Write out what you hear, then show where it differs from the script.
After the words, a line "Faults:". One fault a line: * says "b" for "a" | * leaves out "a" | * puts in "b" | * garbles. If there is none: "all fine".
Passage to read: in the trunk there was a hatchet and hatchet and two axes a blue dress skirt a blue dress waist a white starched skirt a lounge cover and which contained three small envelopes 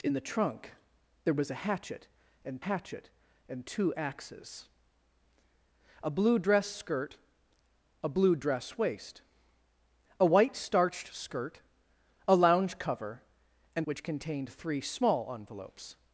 in the trunk there was a hatchet and hatchet and two axes a blue dress skirt a blue dress waist a white starched skirt a lounge cover and which contained three small envelopes
Faults:
all fine